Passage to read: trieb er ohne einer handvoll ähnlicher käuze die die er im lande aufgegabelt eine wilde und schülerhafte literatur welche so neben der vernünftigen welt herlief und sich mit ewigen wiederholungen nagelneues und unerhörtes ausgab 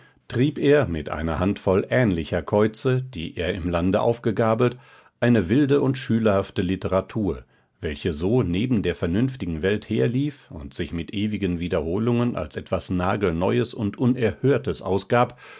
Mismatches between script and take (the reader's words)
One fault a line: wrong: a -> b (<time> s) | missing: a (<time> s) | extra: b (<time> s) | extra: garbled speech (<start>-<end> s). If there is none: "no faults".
wrong: ohne -> mit (0.9 s)
missing: die (3.4 s)
extra: als etwas (12.4 s)